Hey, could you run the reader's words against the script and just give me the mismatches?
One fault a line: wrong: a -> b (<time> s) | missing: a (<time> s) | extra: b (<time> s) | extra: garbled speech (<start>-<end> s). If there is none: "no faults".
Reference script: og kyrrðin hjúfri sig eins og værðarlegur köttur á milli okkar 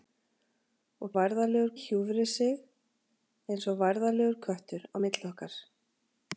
wrong: kyrrðin -> værðarlegur (1.2 s)